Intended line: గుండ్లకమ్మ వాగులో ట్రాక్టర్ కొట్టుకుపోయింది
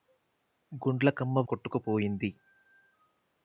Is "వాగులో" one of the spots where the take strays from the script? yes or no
yes